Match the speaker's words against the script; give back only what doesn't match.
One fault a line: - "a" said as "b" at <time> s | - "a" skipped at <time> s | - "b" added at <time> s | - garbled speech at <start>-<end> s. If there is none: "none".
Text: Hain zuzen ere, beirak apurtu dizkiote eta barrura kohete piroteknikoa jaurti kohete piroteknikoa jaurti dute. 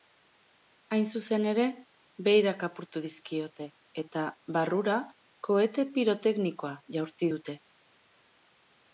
- "kohete piroteknikoa jaurti" skipped at 7.3 s